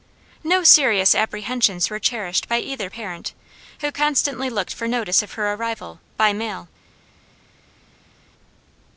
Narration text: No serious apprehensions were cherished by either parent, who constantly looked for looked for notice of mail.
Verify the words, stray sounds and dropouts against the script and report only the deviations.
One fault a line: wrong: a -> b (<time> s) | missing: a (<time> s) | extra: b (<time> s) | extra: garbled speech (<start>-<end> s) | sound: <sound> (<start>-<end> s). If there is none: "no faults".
wrong: looked for notice of -> notice of her arrival by (4.9 s)